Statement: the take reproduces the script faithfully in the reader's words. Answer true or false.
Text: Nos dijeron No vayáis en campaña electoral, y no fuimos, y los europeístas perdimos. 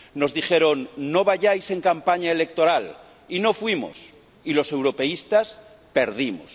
true